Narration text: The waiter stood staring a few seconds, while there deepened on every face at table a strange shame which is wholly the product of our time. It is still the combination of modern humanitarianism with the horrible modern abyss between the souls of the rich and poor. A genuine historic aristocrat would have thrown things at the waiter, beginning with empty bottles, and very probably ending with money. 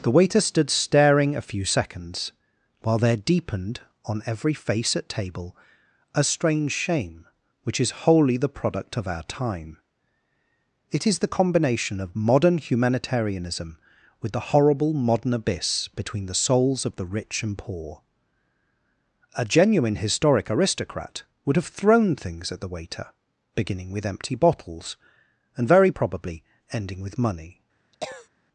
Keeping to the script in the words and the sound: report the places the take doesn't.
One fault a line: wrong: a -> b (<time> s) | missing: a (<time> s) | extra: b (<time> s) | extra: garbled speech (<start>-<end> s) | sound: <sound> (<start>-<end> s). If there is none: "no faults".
missing: still (11.2 s)
sound: cough (27.9-28.3 s)